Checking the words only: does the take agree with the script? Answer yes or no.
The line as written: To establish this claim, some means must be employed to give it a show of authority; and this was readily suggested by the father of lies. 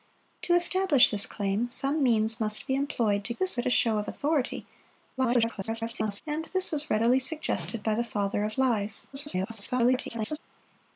no